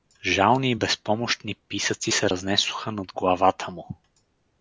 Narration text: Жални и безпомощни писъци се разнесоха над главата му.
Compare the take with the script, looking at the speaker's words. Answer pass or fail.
pass